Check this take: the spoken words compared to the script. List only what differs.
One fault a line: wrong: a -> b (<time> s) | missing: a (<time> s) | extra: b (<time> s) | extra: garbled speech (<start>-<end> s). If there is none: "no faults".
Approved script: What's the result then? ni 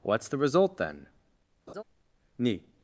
no faults